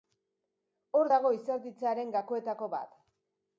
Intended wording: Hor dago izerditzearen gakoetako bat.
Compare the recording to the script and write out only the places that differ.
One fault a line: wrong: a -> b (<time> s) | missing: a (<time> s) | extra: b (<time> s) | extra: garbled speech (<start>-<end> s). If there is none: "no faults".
no faults